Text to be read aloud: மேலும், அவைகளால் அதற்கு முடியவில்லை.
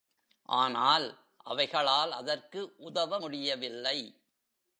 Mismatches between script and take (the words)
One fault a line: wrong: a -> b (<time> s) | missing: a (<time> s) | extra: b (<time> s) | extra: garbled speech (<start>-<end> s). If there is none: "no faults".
wrong: மேலும் -> ஆனால் (0.5 s)
extra: உதவ (2.8 s)